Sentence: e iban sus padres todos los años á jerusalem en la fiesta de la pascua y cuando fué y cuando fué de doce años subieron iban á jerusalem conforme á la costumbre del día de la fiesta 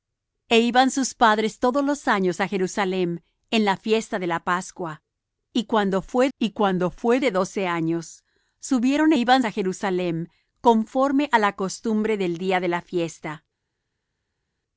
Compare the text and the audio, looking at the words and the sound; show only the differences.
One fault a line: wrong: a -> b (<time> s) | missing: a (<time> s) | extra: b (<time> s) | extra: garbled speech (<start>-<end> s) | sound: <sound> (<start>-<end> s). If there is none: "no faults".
no faults